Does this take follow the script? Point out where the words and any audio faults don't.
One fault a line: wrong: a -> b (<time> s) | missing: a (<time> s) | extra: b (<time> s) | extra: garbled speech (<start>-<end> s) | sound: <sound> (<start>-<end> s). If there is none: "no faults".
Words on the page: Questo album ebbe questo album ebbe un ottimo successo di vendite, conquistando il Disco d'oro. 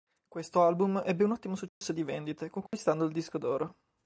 missing: questo album ebbe (1.2 s)
sound: dropout (1.7-1.8 s)
sound: dropout (2.7-2.7 s)